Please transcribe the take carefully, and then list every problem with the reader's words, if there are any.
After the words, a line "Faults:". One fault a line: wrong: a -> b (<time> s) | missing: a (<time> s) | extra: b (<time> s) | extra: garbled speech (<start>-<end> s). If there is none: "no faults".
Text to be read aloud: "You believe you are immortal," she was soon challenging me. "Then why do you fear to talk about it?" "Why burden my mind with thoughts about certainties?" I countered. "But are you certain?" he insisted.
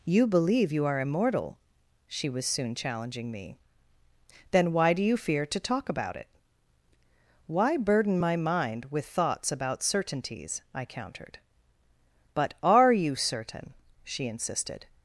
"You believe you are immortal," she was soon challenging me. "Then why do you fear to talk about it?" "Why burden my mind with thoughts about certainties?" I countered. "But are you certain?" she insisted.
Faults:
wrong: he -> she (14.0 s)